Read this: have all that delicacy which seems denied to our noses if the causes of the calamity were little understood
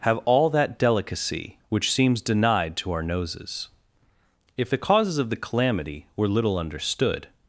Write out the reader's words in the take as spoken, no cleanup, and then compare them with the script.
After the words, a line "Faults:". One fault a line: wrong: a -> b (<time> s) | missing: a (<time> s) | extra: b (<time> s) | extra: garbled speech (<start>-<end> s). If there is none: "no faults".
have all that delicacy which seems denied to our noses if the causes of the calamity were little understood
Faults:
no faults